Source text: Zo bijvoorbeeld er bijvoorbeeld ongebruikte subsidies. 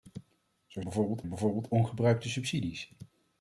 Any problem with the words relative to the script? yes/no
no